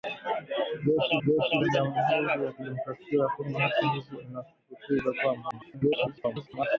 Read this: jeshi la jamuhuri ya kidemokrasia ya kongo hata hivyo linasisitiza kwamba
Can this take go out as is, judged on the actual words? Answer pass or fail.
fail